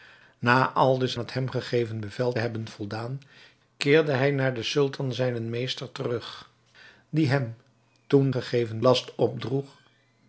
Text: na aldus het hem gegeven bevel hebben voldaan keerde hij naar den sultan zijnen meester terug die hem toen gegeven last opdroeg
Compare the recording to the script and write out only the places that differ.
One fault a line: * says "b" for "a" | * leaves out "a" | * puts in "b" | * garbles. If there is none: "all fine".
all fine